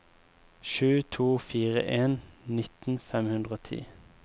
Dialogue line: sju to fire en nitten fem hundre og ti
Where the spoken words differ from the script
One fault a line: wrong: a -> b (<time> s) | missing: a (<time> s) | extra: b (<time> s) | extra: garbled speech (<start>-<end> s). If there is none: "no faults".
no faults